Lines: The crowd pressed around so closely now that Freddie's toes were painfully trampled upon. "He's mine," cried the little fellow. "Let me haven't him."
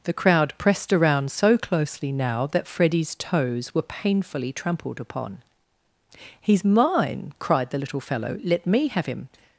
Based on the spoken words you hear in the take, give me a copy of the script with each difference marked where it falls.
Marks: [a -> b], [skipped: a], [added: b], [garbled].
The crowd pressed around so closely now that Freddie's toes were painfully trampled upon. "He's mine," cried the little fellow. "Let me [haven't -> have] him."